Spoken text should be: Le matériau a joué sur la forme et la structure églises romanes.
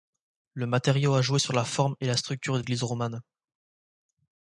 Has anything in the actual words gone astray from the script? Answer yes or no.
no